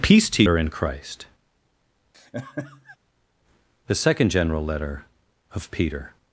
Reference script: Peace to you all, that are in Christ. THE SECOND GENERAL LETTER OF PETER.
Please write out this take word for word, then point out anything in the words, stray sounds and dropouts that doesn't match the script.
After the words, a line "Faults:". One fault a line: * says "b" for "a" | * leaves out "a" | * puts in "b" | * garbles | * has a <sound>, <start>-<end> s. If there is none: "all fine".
Peace to are in Christ. THE SECOND GENERAL LETTER OF PETER.
Faults:
* leaves out "you all that"
* has a laugh, 2.1-3.0 s